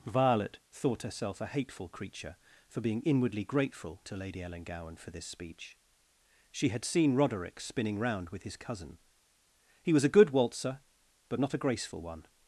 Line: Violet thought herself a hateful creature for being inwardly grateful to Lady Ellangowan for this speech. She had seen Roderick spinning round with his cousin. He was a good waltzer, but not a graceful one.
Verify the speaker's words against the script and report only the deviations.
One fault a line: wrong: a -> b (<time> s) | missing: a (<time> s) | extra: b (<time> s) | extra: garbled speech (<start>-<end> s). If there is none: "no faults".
no faults